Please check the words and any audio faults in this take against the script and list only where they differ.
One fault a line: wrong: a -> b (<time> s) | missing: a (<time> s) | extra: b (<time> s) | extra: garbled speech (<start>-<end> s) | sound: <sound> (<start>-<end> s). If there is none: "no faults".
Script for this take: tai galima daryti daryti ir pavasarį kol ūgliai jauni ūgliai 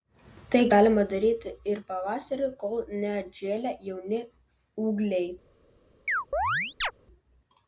missing: daryti (1.5 s)
wrong: ūgliai -> neatžėlę (3.0 s)
sound: chirp (6.1-6.9 s)